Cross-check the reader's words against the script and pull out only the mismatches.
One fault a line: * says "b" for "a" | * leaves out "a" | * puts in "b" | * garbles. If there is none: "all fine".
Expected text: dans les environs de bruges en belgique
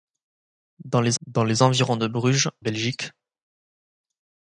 * puts in "dans les"
* leaves out "en"